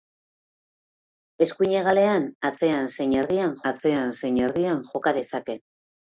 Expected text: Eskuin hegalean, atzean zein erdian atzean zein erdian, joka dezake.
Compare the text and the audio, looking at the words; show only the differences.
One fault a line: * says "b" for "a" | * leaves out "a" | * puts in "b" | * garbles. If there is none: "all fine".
all fine